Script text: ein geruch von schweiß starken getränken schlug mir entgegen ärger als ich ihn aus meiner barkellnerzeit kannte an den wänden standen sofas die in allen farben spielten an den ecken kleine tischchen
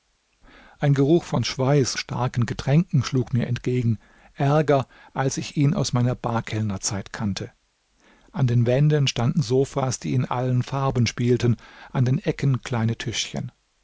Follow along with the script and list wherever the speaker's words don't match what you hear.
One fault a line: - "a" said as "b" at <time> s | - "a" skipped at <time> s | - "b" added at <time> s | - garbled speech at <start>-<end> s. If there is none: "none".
none